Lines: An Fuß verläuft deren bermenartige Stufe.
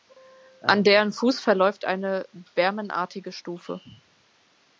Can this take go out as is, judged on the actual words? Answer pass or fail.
fail